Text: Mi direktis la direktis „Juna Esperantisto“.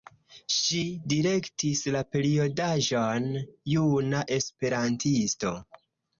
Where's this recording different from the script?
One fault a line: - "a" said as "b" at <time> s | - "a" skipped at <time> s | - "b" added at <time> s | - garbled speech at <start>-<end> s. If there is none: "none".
- "Mi" said as "Ŝi" at 0.5 s
- "direktis" said as "periodaĵon" at 2.1 s